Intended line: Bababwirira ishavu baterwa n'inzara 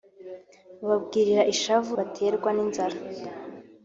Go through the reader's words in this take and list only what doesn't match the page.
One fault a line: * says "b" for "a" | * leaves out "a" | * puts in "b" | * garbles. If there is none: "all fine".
all fine